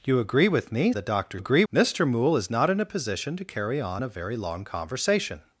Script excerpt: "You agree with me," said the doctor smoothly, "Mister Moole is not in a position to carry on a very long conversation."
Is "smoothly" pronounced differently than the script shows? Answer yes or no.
yes